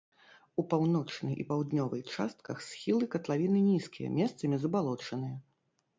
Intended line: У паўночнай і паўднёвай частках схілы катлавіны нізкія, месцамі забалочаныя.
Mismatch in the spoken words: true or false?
false